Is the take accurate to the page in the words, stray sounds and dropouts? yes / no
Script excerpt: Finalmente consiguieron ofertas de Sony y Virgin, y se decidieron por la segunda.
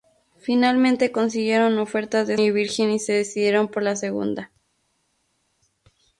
no